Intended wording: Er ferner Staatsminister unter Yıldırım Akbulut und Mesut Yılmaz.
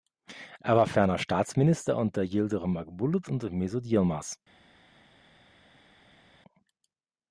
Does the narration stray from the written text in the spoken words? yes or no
yes